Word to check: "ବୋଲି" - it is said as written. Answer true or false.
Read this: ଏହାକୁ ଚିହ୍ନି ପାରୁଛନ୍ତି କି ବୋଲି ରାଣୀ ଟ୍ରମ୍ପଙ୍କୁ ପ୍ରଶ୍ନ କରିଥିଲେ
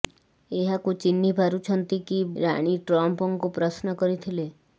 false